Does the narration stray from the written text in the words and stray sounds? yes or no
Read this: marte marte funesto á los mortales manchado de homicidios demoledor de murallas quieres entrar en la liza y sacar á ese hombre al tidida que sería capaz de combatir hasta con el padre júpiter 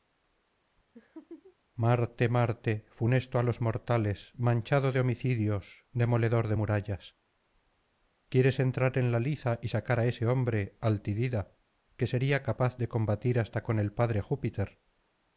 yes